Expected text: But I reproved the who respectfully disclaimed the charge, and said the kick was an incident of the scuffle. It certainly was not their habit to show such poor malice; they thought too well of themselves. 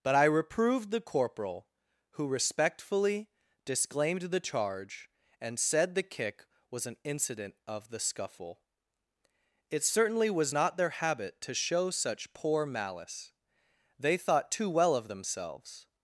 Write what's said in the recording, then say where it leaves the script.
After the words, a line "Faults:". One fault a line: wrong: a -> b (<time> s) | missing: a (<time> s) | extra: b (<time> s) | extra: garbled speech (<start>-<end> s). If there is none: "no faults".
But I reproved the corporal, who respectfully disclaimed the charge, and said the kick was an incident of the scuffle. It certainly was not their habit to show such poor malice; they thought too well of themselves.
Faults:
extra: corporal (1.0 s)